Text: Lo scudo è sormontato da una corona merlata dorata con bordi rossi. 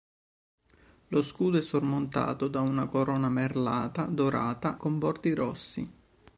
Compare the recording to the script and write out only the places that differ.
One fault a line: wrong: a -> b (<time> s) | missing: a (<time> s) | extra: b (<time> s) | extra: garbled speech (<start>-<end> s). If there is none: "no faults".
no faults